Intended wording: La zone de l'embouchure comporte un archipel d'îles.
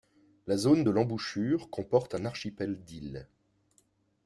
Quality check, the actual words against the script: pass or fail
pass